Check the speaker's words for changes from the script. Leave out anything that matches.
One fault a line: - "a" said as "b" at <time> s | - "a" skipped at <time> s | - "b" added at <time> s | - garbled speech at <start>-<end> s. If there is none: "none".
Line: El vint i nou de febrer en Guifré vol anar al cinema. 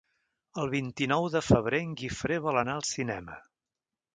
none